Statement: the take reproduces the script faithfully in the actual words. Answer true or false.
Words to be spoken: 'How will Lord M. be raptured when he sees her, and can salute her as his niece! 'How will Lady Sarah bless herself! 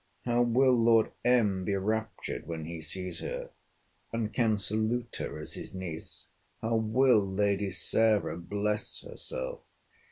true